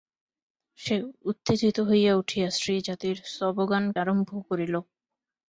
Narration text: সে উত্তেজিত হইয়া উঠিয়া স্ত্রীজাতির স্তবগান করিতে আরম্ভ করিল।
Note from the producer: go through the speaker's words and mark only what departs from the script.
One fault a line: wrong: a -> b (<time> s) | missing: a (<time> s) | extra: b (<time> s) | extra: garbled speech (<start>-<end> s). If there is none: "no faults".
missing: করিতে (3.8 s)